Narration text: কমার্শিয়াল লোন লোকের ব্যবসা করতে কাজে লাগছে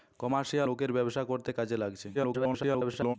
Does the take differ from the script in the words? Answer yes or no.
yes